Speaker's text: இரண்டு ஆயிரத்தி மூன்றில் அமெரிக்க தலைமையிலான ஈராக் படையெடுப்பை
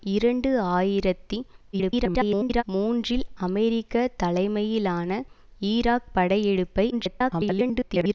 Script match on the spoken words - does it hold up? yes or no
no